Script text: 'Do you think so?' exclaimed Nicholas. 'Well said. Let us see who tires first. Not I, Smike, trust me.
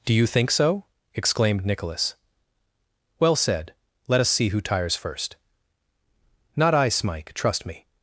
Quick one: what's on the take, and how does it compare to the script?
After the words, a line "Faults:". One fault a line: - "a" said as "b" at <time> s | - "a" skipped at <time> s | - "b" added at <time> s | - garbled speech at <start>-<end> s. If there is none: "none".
'Do you think so?' exclaimed Nicholas. 'Well said. Let us see who tires first. Not I, Smike, trust me.
Faults:
none